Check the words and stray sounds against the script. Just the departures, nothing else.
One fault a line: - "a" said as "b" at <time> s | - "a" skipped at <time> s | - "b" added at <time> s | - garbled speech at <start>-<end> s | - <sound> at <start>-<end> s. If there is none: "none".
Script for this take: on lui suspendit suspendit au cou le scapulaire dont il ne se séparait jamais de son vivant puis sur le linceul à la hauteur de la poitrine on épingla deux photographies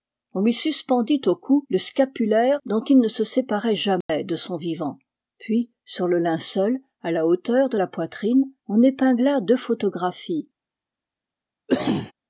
- "suspendit" skipped at 1.2 s
- dropout at 4.0-4.1 s
- cough at 11.7-12.1 s